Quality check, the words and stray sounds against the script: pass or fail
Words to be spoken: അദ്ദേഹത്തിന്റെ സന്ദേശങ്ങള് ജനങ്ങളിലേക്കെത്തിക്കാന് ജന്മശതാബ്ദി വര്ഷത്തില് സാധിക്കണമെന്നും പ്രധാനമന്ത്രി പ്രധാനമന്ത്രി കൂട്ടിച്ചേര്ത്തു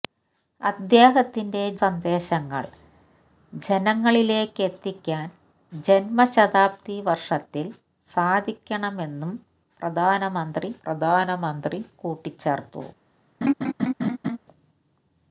fail